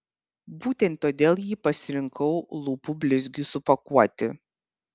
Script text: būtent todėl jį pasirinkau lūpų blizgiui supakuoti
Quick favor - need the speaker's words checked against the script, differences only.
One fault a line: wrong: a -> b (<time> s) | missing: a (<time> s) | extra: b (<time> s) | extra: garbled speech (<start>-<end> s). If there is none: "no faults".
no faults